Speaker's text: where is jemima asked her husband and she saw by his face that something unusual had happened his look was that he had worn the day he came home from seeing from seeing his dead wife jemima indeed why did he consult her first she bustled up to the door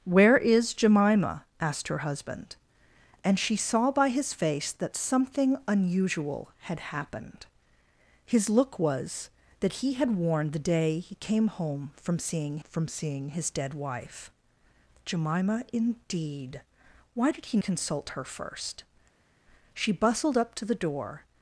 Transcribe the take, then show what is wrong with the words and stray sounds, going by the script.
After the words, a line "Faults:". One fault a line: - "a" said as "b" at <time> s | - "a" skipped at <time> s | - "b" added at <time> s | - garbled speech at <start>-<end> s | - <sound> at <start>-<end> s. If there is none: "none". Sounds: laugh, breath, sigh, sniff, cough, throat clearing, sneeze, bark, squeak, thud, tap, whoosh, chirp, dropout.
where is jemima asked her husband and she saw by his face that something unusual had happened his look was that he had worn the day he came home from seeing from seeing his dead wife jemima indeed why did he consult her first she bustled up to the door
Faults:
none